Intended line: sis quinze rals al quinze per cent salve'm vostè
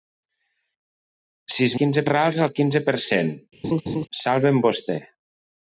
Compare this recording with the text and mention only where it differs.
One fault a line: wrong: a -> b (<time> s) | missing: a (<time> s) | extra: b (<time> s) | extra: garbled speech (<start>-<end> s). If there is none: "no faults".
no faults